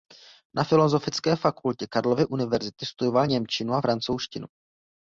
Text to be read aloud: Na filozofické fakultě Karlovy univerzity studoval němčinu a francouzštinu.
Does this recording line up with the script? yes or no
yes